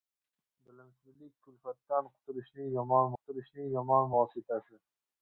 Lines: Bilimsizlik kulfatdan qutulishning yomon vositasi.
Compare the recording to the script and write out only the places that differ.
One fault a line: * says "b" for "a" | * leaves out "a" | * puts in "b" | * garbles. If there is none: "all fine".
* puts in "qutulishning yomon"